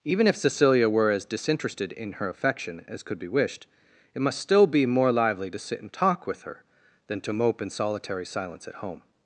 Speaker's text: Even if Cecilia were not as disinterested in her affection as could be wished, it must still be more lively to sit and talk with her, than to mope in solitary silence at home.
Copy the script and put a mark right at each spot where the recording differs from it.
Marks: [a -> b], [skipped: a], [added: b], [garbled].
Even if Cecilia were [skipped: not] as disinterested in her affection as could be wished, it must still be more lively to sit and talk with her, than to mope in solitary silence at home.